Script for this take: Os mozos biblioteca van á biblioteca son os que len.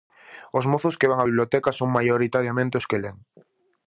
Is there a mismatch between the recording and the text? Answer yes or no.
yes